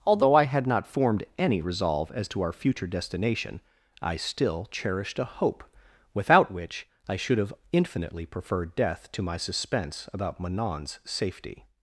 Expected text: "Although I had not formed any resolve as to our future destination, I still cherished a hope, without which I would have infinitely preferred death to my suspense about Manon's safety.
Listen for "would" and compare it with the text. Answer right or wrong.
wrong